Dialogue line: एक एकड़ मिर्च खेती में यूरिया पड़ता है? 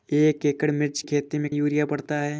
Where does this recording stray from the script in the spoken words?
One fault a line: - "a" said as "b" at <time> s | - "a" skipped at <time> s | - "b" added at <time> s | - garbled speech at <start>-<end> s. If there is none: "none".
none